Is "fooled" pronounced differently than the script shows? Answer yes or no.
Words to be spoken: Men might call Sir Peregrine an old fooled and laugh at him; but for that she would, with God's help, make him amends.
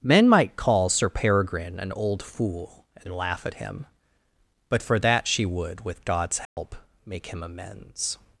yes